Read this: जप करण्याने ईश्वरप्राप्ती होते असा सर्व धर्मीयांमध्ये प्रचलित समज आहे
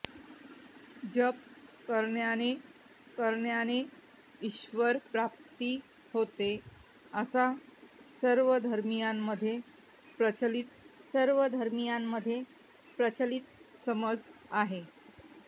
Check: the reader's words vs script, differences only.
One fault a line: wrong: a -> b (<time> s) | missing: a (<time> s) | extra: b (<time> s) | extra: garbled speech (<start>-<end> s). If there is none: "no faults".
extra: करण्याने (3.2 s)
extra: सर्व धर्मीयांमध्ये प्रचलित (11.1 s)